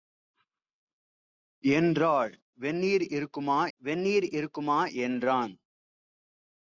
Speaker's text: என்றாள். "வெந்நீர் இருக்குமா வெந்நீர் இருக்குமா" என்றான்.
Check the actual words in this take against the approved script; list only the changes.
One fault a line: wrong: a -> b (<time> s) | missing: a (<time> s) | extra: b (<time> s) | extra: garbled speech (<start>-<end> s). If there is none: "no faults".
no faults